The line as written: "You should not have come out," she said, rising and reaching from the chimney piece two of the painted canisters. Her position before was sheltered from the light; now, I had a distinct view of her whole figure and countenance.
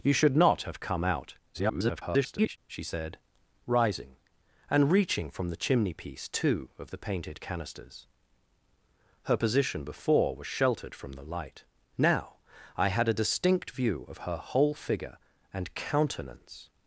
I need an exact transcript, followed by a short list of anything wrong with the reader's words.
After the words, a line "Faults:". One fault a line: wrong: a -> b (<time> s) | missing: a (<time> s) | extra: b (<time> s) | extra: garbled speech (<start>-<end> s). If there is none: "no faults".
"You should not have come out," [garbled] she said, rising and reaching from the chimney piece two of the painted canisters. Her position before was sheltered from the light; now, I had a distinct view of her whole figure and countenance.
Faults:
extra: garbled speech (1.5-2.6 s)